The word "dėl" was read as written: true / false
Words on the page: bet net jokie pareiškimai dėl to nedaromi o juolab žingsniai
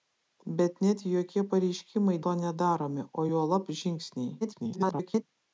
false